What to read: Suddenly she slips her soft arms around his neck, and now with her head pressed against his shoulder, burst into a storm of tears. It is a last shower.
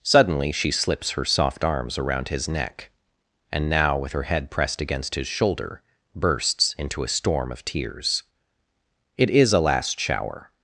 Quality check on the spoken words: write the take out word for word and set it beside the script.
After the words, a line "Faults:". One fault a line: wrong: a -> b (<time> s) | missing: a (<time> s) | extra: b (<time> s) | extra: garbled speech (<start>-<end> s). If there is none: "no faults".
Suddenly she slips her soft arms around his neck, and now with her head pressed against his shoulder, bursts into a storm of tears. It is a last shower.
Faults:
wrong: burst -> bursts (6.2 s)